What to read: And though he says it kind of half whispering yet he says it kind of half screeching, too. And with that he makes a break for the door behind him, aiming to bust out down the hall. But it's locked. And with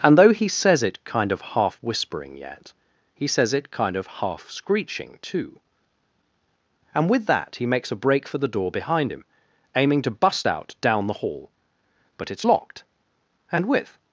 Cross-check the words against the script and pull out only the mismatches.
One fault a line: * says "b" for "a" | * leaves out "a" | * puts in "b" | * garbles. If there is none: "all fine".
all fine